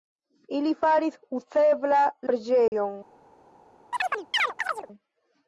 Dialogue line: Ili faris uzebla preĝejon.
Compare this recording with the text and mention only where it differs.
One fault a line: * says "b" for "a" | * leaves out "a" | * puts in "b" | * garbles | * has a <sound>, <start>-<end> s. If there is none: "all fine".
* has a dropout, 2.7-2.7 s
* has a chirp, 3.9-4.9 s